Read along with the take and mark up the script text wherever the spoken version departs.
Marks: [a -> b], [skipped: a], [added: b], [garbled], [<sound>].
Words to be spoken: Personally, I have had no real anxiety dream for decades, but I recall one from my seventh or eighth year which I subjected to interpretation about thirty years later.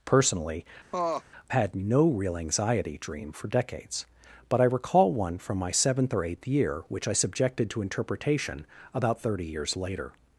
Personally, [skipped: I have] [laugh] had no real anxiety dream for decades, but I recall one from my seventh or eighth year which I subjected to interpretation about thirty years later.